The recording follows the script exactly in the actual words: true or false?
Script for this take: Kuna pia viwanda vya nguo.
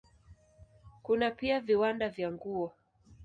true